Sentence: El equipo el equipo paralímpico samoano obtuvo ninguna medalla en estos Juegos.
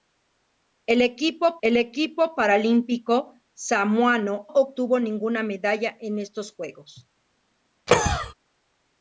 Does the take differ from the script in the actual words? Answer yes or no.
no